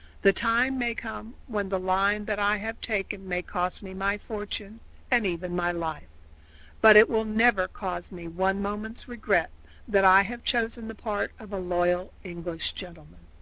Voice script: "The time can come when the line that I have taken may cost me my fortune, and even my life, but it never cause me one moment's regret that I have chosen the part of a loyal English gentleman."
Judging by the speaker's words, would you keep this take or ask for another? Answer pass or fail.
fail